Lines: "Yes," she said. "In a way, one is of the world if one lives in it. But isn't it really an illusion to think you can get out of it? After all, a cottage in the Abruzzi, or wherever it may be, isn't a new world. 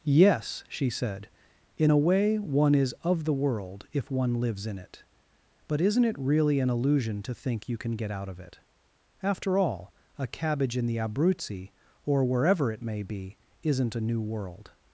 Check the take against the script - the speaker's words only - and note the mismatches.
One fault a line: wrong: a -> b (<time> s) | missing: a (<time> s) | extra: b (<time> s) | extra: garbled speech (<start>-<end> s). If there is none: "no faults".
wrong: cottage -> cabbage (10.3 s)